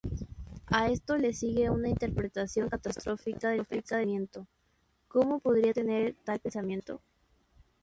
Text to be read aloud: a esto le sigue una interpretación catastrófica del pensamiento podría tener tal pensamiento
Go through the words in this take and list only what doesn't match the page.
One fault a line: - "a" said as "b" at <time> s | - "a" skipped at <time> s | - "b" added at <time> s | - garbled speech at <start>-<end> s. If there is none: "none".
- "cómo" added at 5.1 s